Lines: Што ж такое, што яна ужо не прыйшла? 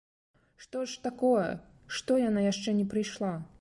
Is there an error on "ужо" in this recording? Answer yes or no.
yes